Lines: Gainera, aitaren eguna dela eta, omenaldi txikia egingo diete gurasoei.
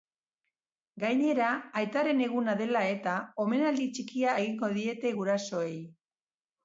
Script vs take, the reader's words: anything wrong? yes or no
no